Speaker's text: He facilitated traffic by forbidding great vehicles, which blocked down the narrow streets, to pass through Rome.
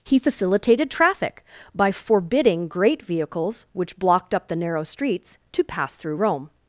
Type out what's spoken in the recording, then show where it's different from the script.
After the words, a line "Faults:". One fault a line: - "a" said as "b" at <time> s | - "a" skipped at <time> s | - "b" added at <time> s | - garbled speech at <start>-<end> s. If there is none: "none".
He facilitated traffic by forbidding great vehicles, which blocked up the narrow streets, to pass through Rome.
Faults:
- "down" said as "up" at 4.3 s